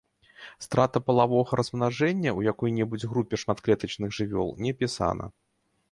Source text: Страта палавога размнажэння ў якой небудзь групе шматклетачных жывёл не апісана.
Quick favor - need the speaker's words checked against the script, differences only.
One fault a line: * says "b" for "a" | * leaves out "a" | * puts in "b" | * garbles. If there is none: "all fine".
all fine